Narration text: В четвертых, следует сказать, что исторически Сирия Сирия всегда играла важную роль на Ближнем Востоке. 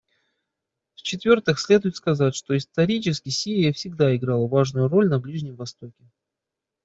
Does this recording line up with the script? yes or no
no